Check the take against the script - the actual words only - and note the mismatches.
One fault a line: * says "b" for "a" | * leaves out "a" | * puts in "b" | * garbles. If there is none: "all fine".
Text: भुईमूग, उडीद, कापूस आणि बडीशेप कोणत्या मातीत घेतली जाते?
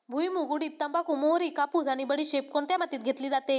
* puts in "तंबाखू मोहरी"